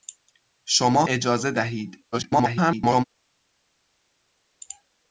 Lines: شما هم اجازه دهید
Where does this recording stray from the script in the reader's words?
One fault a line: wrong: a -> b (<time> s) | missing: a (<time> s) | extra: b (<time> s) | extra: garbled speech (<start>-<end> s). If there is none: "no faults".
missing: هم (1.1 s)
extra: garbled speech (2.1-3.0 s)